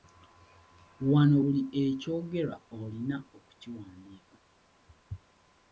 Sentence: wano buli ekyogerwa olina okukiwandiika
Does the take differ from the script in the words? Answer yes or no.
no